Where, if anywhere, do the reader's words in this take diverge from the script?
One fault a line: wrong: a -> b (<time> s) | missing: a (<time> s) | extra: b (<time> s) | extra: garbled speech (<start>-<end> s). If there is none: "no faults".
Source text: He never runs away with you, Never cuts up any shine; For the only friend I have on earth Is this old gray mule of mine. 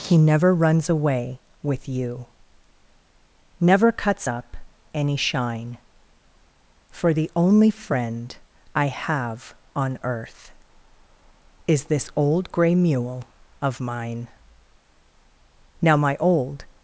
extra: Now my old (15.8 s)